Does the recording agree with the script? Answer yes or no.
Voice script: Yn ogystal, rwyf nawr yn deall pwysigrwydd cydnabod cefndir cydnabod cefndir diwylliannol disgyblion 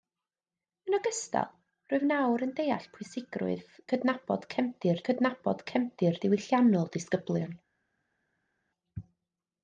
yes